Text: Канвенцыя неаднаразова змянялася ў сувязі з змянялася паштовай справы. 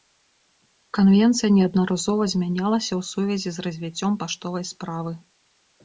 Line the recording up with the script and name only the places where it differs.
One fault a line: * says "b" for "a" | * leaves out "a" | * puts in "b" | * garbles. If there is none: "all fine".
* says "развіццём" for "змянялася"